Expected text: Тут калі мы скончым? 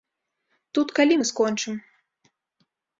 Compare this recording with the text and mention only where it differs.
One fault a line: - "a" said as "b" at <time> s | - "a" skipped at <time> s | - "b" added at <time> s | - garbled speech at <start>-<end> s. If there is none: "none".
none